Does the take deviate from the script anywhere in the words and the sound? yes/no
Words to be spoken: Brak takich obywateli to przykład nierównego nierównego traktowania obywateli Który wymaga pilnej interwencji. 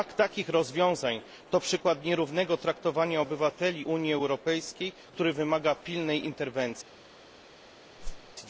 yes